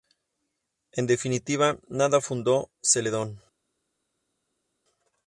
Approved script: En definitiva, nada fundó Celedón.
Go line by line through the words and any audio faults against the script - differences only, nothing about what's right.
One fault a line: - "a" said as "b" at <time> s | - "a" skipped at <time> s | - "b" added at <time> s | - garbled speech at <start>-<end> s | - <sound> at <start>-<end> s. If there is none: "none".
none